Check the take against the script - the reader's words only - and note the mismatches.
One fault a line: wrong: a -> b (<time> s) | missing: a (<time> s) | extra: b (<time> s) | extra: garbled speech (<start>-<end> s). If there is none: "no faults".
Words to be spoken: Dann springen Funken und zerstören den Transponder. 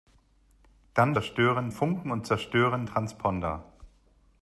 wrong: springen -> zerstören (1.1 s)
missing: den (2.9 s)